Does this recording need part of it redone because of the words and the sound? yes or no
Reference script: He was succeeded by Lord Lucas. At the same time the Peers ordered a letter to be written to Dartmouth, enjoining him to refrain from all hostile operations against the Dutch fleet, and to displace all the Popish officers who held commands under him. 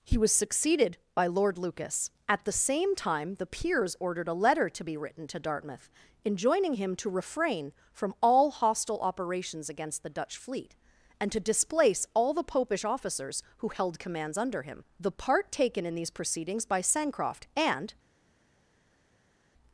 yes